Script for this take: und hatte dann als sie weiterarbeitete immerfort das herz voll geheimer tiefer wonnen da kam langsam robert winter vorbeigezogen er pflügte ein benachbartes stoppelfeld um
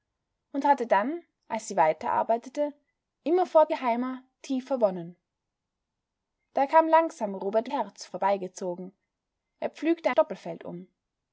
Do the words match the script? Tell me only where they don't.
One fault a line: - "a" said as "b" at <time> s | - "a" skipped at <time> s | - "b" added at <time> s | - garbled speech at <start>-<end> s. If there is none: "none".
- "das herz voll" skipped at 3.7 s
- "winter" said as "herz" at 7.7 s
- "ein benachbartes" skipped at 10.1 s